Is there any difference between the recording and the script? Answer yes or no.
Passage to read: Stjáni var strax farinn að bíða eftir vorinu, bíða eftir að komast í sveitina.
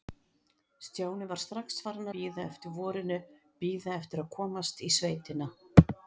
yes